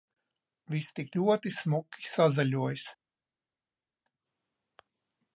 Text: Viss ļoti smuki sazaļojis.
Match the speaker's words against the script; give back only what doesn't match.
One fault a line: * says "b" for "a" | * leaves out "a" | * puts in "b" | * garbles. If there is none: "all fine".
* puts in "tik"